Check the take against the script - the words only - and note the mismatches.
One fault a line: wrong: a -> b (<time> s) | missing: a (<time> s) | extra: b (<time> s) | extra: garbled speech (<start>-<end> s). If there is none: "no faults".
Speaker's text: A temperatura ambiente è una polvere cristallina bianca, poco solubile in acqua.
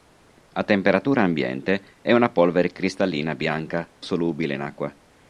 missing: poco (3.9 s)